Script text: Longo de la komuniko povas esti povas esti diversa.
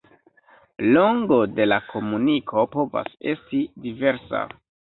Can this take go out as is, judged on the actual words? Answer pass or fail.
fail